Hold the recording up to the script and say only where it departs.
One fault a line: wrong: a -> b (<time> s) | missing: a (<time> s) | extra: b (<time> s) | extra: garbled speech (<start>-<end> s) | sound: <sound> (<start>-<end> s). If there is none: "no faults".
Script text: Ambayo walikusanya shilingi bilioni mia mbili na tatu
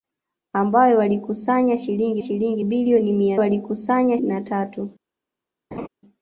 extra: shilingi (2.2 s)
wrong: mbili -> walikusanya (3.4 s)
sound: laugh (5.7-5.9 s)